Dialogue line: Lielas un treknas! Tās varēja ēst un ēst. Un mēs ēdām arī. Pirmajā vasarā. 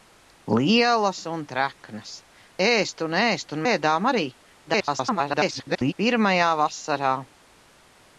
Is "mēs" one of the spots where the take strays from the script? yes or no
yes